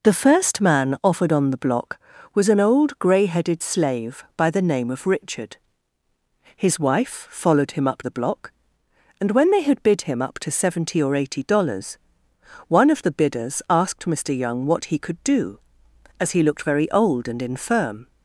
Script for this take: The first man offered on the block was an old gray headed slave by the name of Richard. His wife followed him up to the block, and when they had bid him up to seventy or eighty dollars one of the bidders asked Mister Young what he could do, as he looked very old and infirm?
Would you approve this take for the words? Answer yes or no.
no